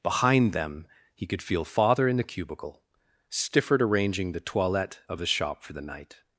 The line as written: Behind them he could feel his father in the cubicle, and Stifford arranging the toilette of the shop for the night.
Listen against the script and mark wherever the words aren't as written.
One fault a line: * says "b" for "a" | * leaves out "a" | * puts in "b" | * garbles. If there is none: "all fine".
* leaves out "his"
* leaves out "and"